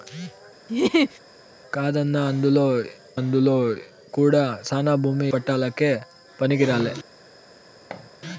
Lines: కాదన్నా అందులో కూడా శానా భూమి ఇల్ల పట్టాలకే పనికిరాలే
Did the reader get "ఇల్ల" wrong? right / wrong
wrong